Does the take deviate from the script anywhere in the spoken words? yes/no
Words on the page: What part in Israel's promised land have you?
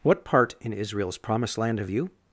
no